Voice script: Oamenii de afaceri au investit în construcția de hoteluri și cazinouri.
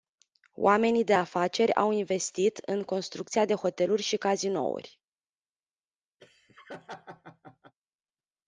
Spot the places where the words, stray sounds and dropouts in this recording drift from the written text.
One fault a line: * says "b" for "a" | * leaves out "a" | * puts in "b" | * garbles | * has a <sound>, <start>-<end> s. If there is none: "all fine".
* has a laugh, 6.2-7.7 s